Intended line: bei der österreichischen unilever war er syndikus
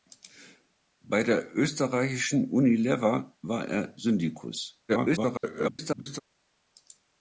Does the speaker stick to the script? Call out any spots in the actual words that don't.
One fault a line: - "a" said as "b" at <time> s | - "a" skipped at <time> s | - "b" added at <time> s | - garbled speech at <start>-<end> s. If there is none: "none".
- garbled speech at 4.9-6.2 s